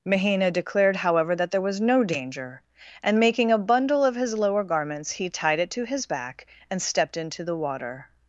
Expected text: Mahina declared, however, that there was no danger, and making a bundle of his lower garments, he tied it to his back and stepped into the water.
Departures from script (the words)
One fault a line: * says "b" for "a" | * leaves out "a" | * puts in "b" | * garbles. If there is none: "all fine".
all fine